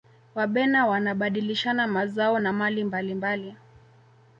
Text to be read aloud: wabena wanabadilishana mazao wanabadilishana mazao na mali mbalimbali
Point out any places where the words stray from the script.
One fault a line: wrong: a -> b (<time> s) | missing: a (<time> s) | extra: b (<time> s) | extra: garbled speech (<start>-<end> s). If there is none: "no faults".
missing: wanabadilishana mazao (2.4 s)